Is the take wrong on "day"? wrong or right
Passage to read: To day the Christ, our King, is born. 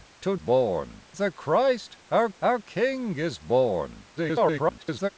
wrong